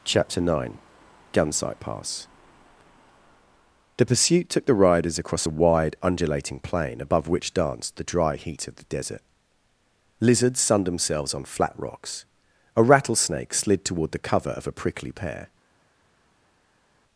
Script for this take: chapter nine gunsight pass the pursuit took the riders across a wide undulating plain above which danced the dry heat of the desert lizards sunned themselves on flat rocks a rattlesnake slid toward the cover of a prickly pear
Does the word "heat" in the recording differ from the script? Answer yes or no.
no